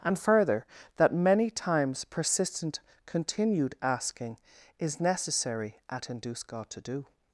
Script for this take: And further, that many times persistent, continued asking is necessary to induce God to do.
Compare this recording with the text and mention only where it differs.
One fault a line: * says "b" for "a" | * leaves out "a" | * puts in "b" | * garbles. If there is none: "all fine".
* says "at" for "to"